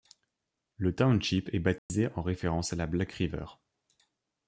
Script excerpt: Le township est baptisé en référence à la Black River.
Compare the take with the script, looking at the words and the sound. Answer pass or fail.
fail